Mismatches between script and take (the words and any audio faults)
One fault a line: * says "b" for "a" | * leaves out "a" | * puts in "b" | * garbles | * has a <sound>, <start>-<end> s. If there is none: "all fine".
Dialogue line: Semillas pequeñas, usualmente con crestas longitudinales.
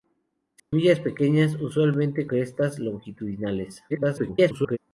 * has a dropout, 0.6-0.7 s
* leaves out "con"
* garbles